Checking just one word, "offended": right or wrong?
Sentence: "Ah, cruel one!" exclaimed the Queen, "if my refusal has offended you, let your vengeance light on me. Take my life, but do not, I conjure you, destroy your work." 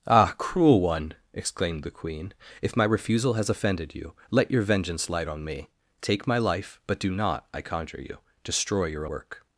right